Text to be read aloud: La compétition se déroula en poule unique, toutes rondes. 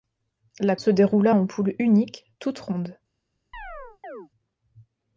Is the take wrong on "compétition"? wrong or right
wrong